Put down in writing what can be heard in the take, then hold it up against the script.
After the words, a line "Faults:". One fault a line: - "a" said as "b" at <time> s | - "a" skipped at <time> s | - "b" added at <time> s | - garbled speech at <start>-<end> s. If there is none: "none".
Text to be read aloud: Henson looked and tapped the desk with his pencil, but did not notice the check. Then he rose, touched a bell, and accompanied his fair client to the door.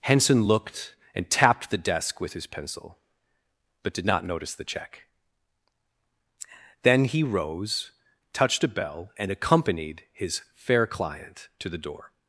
Henson looked and tapped the desk with his pencil, but did not notice the check. Then he rose, touched a bell, and accompanied his fair client to the door.
Faults:
none